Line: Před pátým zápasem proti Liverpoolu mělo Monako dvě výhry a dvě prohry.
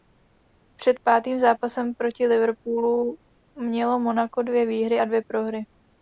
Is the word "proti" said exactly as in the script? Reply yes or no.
yes